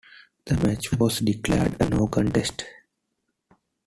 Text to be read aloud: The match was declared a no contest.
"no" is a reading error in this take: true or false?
false